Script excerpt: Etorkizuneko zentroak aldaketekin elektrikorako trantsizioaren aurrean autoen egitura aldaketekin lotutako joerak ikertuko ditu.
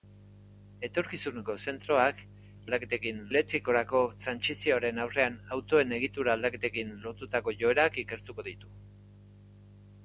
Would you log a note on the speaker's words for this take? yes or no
no